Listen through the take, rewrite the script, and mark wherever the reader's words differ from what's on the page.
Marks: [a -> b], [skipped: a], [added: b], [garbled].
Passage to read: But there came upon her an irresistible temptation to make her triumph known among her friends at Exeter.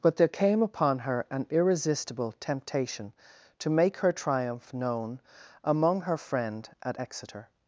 But there came upon her an irresistible temptation to make her triumph known among her [friends -> friend] at Exeter.